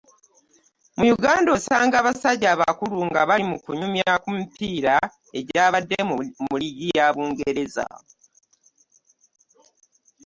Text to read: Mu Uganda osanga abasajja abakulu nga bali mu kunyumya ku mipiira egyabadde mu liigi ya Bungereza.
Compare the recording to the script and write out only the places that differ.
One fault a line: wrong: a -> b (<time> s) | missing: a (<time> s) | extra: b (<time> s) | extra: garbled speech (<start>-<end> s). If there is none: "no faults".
no faults